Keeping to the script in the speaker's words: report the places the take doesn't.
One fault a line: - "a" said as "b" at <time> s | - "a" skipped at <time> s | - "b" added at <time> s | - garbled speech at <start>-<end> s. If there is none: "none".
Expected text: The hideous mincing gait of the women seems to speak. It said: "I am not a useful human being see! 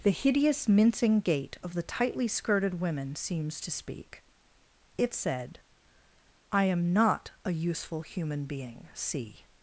- "tightly skirted" added at 1.8 s